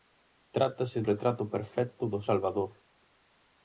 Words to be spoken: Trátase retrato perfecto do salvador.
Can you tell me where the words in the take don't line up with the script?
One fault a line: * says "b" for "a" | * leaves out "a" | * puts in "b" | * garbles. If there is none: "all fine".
all fine